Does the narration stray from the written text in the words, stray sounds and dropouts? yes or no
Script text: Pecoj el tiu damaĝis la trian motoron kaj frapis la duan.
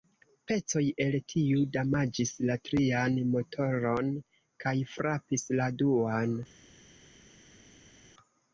no